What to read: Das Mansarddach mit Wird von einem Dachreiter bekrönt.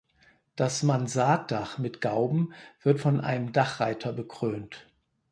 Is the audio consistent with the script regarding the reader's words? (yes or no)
no